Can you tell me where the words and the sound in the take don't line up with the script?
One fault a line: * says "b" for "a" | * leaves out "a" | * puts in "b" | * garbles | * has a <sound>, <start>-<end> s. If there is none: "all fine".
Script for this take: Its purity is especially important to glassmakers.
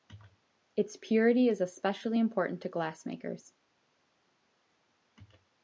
all fine